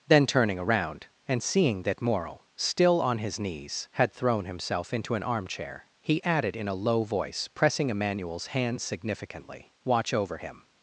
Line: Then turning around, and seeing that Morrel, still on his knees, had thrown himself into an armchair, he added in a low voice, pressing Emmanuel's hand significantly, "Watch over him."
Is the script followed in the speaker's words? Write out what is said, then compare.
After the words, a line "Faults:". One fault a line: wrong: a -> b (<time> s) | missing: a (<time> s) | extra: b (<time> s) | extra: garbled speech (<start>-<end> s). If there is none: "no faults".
Then turning around, and seeing that Morrel, still on his knees, had thrown himself into an armchair, he added in a low voice, pressing Emmanuel's hand significantly, "Watch over him."
Faults:
no faults